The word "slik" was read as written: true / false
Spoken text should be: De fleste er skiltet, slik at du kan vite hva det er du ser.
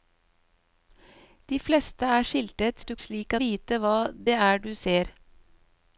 false